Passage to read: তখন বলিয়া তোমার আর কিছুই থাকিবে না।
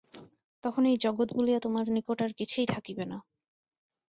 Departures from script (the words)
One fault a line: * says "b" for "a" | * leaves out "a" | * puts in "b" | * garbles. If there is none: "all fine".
* puts in "এই জগৎ"
* puts in "নিকট"